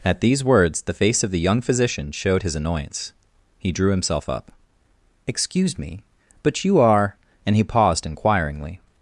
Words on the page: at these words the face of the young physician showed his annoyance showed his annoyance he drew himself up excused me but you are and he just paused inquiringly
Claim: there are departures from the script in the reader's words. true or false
true